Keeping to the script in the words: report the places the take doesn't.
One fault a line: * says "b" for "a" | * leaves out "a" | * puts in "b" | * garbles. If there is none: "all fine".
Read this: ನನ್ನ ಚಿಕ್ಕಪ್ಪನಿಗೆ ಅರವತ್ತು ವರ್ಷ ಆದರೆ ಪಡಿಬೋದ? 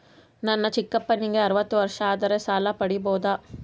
* puts in "ಸಾಲ"